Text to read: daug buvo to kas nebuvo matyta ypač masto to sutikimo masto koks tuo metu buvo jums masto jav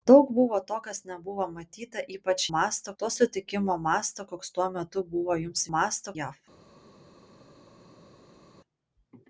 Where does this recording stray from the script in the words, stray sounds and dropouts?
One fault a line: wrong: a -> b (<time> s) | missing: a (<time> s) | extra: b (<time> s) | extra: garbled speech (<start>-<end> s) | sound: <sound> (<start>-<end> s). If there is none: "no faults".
no faults